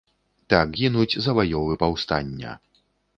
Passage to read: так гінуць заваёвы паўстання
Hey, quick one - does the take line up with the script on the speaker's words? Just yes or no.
yes